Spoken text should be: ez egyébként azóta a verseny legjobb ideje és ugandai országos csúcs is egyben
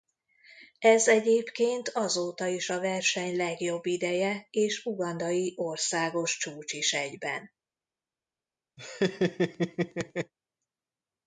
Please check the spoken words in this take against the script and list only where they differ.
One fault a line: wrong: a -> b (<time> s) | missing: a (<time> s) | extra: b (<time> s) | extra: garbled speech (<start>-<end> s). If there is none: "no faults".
extra: is (2.5 s)